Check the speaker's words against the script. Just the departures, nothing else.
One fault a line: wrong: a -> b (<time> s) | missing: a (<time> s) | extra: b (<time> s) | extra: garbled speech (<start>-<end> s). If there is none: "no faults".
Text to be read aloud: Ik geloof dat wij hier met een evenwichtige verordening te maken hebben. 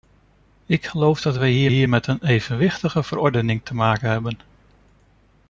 extra: hier (1.7 s)